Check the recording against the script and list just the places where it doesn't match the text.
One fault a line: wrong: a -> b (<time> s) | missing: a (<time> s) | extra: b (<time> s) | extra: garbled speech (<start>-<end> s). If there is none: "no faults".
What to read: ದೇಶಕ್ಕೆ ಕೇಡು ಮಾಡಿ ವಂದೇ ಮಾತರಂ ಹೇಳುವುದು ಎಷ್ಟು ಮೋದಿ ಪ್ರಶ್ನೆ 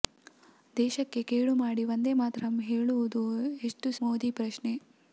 no faults